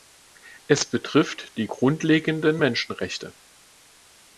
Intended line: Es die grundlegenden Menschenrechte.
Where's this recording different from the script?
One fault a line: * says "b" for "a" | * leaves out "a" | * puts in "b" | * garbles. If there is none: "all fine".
* puts in "betrifft"